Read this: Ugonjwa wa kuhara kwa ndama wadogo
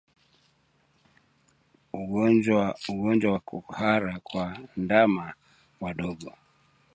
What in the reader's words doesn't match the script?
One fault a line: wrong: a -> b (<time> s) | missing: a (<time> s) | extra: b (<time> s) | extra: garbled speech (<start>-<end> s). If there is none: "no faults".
no faults